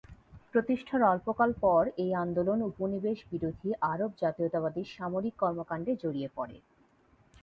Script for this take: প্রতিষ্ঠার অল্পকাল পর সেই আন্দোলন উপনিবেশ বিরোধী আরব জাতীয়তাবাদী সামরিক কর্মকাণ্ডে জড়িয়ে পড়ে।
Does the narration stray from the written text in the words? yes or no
yes